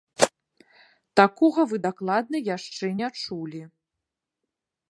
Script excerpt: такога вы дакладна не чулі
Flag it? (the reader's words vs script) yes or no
yes